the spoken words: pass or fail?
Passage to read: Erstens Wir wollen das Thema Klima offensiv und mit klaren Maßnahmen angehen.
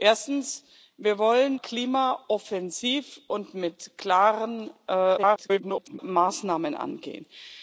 fail